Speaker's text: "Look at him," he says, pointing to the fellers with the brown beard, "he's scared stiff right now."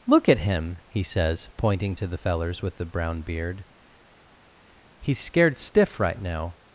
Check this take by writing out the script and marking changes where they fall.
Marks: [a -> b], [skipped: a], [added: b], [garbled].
"Look at him," he says, pointing to the fellers with the brown beard, "he's scared stiff right now."